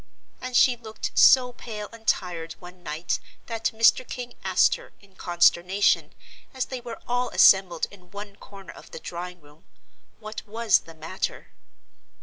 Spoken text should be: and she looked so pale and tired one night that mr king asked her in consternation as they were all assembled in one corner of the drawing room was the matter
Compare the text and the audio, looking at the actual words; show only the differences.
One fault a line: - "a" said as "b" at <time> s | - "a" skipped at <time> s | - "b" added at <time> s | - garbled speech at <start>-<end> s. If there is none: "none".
- "what" added at 10.2 s